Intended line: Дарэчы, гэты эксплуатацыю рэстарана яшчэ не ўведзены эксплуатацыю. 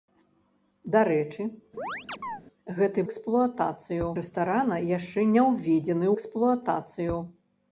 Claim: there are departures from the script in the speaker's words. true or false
false